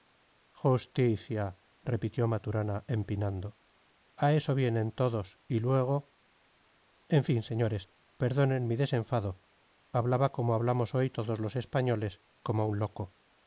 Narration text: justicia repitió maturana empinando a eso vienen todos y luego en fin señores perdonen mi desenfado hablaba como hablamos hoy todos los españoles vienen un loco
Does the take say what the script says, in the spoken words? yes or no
no